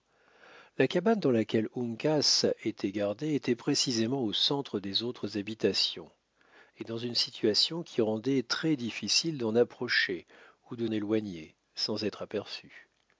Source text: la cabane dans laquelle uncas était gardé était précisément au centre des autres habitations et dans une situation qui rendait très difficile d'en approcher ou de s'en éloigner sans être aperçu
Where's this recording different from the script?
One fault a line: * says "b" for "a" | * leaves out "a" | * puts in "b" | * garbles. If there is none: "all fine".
* leaves out "s'en"